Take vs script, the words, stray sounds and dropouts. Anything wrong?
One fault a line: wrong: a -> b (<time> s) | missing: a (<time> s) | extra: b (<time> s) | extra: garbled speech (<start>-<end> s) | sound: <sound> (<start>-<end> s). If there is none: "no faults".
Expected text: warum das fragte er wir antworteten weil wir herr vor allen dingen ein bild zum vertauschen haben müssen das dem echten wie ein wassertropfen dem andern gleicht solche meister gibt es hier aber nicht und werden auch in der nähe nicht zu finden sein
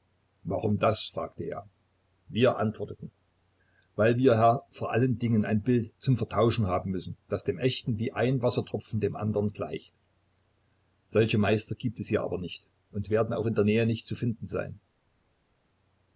no faults